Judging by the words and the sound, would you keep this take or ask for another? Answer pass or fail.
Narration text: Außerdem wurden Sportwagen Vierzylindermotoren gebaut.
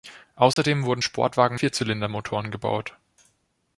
fail